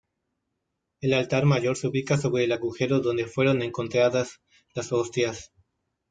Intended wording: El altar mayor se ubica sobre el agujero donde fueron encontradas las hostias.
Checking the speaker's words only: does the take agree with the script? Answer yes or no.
yes